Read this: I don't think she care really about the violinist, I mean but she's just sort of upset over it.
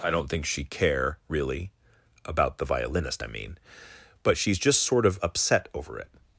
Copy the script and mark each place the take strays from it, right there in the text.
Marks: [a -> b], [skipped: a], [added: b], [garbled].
I don't think she care really about the violinist, I mean but she's just sort of upset over it.